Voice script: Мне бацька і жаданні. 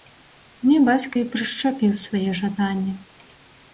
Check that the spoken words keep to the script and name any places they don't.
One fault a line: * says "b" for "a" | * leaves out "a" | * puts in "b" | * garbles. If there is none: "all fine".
* puts in "прышчапіў свае"